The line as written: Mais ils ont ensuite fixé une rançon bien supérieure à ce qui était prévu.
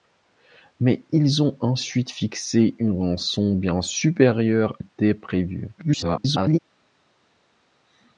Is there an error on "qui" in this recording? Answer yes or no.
yes